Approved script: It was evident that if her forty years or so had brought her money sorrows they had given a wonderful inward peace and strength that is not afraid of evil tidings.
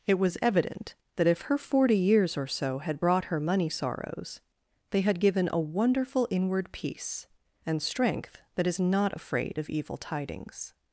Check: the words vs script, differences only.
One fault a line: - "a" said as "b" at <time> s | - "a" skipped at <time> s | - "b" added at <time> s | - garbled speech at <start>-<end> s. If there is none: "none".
none